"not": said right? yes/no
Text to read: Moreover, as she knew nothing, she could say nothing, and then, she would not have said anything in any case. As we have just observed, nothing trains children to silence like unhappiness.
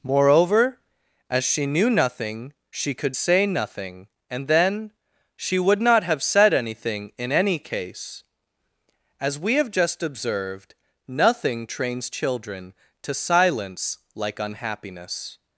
yes